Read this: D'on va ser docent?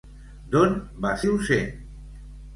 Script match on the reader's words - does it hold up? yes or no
no